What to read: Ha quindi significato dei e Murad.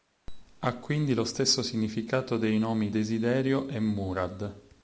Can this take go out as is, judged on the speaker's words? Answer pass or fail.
fail